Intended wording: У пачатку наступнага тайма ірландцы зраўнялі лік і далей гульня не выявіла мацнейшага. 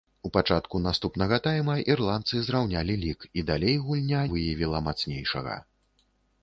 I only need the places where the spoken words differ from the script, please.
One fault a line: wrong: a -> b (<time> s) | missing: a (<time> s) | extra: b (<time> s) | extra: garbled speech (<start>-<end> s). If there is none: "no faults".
missing: не (4.2 s)